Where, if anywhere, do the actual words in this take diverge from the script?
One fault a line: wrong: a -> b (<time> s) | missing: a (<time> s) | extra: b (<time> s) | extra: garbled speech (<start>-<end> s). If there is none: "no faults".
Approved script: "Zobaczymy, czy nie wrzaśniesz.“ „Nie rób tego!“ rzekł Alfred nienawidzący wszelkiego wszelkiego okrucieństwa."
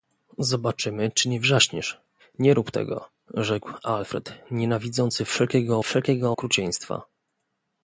no faults